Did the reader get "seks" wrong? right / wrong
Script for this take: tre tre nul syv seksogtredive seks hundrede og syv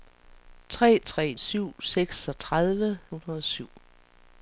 wrong